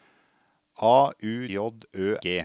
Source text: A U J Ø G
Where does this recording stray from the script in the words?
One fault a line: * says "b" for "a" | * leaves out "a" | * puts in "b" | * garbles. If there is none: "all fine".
all fine